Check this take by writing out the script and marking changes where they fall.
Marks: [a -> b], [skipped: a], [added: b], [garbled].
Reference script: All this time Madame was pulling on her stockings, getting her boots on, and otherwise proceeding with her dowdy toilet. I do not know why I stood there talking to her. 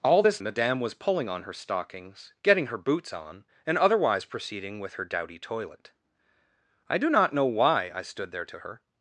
All this [skipped: time] Madame was pulling on her stockings, getting her boots on, and otherwise proceeding with her dowdy toilet. I do not know why I stood there [skipped: talking] to her.